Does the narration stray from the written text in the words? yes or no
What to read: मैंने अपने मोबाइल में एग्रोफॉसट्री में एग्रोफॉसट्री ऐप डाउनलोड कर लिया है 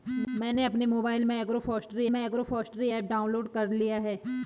no